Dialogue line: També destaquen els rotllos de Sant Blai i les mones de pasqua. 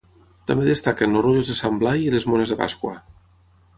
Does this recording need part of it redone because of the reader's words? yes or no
no